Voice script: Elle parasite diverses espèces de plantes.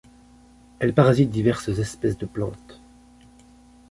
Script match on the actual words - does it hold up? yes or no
yes